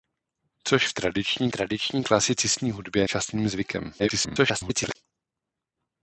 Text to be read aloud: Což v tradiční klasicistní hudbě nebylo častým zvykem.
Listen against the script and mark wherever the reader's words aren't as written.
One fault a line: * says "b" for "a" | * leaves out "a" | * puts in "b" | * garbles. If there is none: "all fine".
* puts in "tradiční"
* leaves out "nebylo"
* garbles